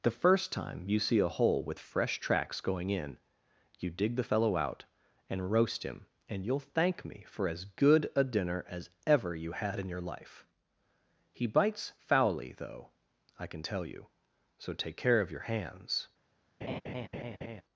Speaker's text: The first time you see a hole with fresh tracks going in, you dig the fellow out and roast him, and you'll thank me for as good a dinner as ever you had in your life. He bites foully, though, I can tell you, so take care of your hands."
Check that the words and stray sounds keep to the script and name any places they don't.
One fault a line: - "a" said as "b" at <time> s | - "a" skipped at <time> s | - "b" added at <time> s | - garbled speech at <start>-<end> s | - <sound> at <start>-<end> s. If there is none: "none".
- laugh at 16.6-17.6 s